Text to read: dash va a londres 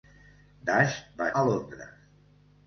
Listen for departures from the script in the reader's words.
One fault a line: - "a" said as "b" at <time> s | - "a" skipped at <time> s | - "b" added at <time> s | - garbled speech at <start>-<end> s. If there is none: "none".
none